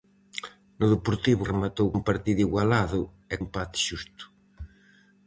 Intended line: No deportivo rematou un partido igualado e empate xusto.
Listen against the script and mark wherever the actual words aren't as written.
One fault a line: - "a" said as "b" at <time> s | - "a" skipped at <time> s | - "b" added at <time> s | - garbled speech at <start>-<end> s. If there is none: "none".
none